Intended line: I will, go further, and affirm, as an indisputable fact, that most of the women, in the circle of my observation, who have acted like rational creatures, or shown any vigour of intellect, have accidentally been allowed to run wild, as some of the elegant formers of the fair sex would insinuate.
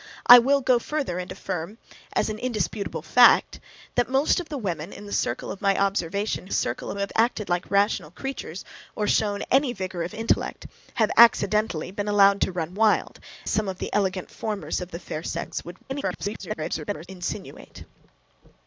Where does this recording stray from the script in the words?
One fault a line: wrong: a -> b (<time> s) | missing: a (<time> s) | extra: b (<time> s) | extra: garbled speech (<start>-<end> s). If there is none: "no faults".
wrong: who -> circle (6.5 s)
missing: as (13.2 s)
extra: garbled speech (15.9-17.1 s)